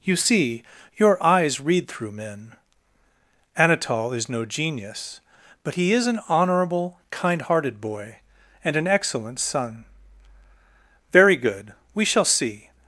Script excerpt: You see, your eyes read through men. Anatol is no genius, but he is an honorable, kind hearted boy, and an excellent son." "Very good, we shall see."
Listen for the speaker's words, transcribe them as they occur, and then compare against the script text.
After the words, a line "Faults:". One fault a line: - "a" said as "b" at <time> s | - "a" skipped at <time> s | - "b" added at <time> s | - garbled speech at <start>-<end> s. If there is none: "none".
You see, your eyes read through men. Anatol is no genius, but he is an honorable, kind hearted boy, and an excellent son." "Very good, we shall see."
Faults:
none